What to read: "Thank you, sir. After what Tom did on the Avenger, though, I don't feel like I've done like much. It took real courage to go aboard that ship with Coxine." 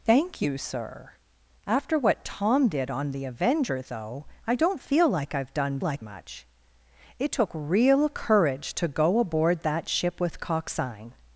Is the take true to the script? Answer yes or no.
yes